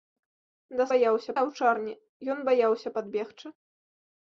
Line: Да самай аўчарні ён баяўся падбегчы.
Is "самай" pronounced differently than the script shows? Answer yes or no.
yes